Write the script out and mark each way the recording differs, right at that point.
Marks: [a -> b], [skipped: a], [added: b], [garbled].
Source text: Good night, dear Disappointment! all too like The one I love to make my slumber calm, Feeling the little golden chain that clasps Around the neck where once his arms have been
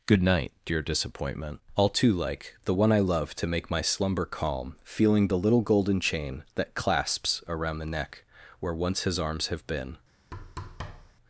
Good night, dear Disappointment! all too like The one I love to make my slumber calm, Feeling the little golden chain that clasps Around the neck where once his arms have been